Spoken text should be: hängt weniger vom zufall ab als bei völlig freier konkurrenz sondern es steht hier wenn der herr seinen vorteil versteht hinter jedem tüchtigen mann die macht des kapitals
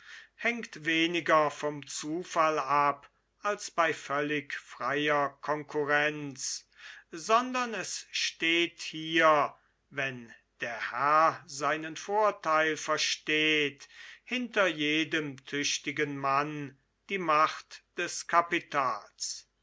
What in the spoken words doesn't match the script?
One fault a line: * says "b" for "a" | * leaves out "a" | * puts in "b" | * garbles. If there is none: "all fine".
all fine